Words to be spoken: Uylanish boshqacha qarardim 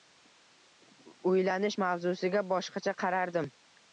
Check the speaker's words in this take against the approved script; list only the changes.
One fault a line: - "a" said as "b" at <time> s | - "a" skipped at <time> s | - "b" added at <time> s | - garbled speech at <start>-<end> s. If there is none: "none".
- "mavzusiga" added at 1.8 s